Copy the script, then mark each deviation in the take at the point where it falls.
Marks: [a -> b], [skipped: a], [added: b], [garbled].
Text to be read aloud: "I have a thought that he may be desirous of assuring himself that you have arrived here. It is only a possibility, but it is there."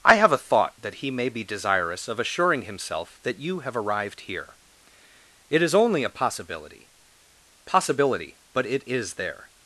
"I have a thought that he may be desirous of assuring himself that you have arrived here. It is only a possibility, [added: possibility] but it is there."